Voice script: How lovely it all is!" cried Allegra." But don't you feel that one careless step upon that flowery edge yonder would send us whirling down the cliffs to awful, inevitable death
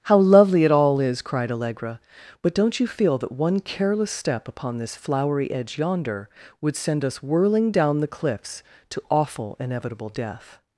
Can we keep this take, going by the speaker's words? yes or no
no